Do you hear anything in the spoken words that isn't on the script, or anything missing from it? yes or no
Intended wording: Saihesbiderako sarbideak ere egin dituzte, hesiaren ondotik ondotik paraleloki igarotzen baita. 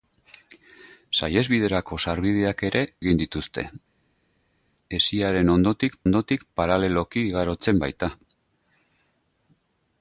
no